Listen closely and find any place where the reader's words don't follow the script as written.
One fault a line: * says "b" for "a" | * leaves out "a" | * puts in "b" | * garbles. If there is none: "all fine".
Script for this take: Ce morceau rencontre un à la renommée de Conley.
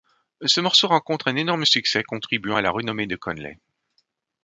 * puts in "énorme succès contribuant"